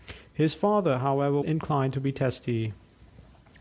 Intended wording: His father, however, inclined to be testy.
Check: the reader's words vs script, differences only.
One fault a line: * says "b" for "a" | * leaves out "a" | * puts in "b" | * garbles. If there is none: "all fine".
all fine